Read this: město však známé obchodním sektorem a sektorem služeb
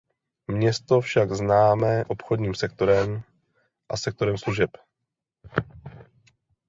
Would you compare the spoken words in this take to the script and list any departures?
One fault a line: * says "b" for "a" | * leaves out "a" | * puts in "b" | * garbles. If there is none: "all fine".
all fine